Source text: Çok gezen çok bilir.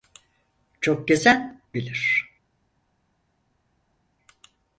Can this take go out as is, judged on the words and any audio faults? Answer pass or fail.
fail